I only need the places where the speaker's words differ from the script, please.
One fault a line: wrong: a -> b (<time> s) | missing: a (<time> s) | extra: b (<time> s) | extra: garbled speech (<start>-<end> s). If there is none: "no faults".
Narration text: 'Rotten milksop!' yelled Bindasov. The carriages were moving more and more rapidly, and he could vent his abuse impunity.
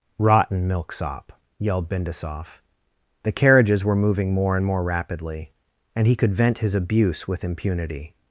extra: with (7.3 s)